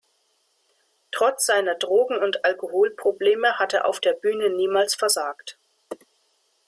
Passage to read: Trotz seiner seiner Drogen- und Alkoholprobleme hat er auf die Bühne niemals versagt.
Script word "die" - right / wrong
wrong